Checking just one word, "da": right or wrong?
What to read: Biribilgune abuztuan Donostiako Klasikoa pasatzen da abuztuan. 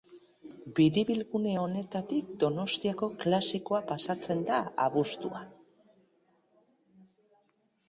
right